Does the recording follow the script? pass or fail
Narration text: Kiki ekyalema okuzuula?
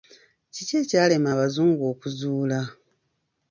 fail